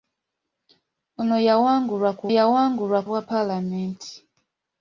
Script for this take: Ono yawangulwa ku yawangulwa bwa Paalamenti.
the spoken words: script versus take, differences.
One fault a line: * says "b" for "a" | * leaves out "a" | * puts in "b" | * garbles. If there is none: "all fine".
all fine